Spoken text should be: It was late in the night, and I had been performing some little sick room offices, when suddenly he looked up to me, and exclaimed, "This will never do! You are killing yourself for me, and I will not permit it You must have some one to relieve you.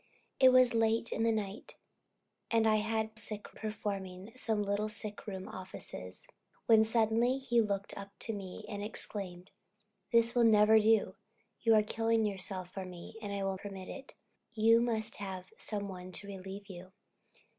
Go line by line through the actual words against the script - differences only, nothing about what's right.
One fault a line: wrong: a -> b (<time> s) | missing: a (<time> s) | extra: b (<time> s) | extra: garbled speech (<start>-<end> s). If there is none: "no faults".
wrong: been -> sick (3.1 s)
missing: not (13.6 s)